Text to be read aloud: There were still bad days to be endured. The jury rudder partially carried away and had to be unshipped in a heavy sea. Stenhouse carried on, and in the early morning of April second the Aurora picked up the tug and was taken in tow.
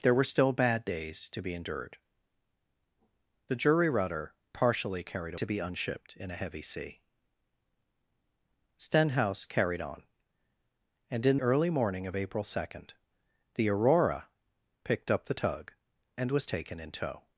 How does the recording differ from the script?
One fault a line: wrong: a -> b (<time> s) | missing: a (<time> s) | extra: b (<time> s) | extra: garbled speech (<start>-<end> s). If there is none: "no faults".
missing: away and had (5.3 s)
missing: the (11.4 s)